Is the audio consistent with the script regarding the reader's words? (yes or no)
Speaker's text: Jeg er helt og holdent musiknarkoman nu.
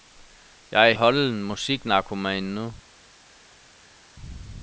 no